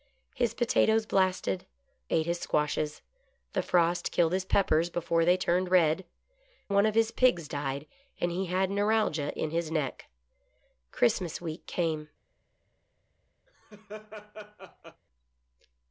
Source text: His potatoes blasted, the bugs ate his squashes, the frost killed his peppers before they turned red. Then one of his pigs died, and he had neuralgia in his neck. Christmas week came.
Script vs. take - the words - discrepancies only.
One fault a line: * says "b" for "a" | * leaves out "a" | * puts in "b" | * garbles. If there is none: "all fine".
* leaves out "the bugs"
* leaves out "Then"